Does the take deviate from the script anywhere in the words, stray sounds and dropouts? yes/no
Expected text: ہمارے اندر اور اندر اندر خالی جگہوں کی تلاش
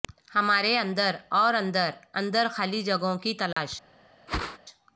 yes